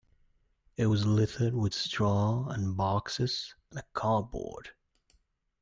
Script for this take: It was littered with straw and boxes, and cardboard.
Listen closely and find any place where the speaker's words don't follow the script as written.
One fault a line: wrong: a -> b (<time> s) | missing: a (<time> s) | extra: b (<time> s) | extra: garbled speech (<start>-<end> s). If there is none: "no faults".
no faults